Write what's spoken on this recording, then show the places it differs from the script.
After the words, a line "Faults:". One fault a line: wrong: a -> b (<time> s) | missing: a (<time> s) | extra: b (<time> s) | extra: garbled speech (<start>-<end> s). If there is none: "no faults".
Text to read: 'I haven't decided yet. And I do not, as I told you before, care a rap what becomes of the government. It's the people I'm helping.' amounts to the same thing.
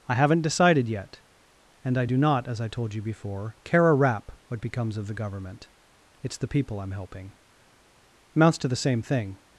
'I haven't decided yet. And I do not, as I told you before, care a rap what becomes of the government. It's the people I'm helping.' amounts to the same thing.
Faults:
no faults